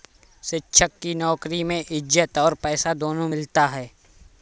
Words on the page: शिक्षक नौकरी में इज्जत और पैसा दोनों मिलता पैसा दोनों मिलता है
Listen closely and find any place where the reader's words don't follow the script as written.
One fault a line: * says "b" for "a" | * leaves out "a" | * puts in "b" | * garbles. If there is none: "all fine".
* puts in "की"
* leaves out "पैसा दोनों मिलता"